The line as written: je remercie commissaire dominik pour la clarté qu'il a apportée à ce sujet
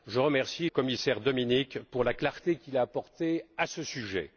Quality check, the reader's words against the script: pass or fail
pass